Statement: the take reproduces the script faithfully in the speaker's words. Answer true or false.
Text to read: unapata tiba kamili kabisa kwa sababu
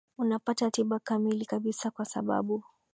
true